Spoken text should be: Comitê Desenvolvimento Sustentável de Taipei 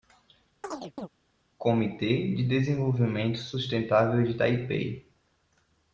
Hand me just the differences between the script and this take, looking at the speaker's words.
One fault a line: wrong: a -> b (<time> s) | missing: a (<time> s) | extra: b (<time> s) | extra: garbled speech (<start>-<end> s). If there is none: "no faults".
extra: de (2.3 s)